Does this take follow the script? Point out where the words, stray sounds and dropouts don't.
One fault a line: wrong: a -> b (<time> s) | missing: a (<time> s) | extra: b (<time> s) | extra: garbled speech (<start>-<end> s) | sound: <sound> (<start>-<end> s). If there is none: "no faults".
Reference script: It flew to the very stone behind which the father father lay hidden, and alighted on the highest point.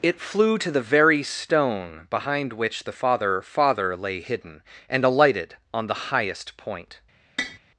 sound: tap (7.4-7.6 s)